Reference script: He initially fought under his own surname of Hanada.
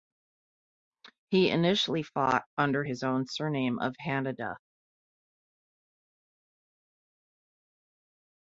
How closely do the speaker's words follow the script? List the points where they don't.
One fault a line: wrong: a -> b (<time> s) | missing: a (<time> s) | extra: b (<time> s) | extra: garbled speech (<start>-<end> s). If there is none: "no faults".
no faults